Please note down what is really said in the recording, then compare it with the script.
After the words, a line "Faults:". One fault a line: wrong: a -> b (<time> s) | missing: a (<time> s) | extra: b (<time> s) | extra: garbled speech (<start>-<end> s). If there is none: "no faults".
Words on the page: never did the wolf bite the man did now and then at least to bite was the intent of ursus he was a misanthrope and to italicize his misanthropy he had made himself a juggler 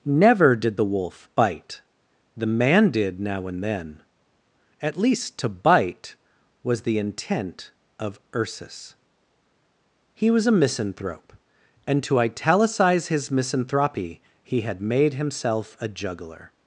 never did the wolf bite the man did now and then at least to bite was the intent of ursus he was a misanthrope and to italicize his misanthropy he had made himself a juggler
Faults:
no faults